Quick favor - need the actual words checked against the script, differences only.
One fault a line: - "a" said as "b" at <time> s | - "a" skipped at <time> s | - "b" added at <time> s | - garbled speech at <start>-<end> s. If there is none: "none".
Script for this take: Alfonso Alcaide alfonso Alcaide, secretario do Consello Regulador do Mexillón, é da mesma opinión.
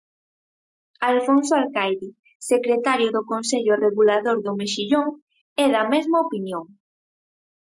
- "alfonso Alcaide" skipped at 2.1 s